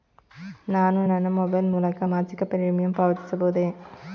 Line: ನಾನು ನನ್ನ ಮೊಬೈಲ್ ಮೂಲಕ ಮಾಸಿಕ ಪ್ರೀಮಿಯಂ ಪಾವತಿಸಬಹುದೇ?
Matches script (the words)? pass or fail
pass